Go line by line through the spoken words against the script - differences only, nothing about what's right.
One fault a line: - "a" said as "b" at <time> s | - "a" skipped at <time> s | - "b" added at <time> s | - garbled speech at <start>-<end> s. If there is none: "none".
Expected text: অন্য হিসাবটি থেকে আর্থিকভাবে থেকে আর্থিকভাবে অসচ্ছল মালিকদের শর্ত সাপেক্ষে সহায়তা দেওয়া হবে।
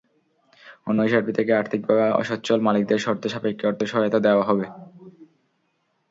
- "থেকে আর্থিকভাবে" skipped at 2.0 s
- "অর্থ" added at 3.7 s